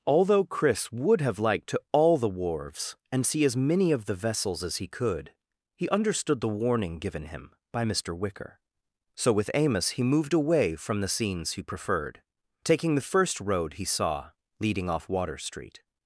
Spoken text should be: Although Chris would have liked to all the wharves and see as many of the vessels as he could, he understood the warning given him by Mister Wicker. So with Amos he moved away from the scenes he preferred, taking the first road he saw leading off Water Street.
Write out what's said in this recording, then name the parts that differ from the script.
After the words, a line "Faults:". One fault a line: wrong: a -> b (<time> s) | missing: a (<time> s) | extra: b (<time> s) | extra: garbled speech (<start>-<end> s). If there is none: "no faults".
Although Chris would have liked to all the wharves and see as many of the vessels as he could, he understood the warning given him by Mister Wicker. So with Amos he moved away from the scenes he preferred, taking the first road he saw leading off Water Street.
Faults:
no faults